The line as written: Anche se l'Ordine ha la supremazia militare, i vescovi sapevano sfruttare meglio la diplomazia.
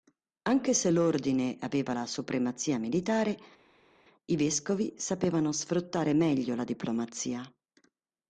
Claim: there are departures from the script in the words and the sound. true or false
true